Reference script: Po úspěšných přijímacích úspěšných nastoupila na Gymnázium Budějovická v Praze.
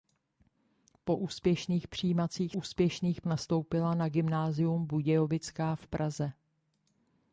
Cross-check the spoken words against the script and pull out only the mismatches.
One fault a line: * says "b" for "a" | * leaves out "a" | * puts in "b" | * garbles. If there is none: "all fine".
all fine